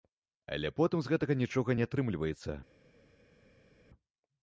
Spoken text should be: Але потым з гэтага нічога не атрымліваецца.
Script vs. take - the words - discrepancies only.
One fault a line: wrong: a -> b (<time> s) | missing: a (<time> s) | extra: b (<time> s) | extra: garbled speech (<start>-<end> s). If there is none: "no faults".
no faults